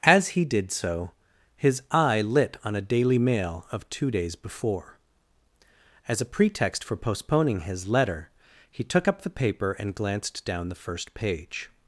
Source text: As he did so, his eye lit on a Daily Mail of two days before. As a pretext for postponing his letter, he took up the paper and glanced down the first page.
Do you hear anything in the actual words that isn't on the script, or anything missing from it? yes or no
no